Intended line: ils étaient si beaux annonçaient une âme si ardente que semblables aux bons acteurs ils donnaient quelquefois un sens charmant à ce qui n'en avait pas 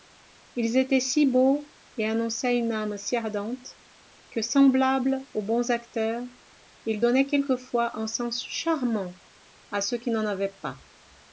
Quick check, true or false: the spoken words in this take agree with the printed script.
false